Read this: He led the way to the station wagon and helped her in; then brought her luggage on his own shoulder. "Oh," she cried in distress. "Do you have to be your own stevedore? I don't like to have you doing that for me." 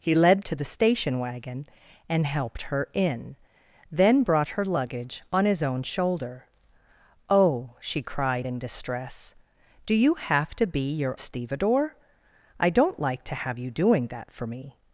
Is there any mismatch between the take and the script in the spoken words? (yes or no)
yes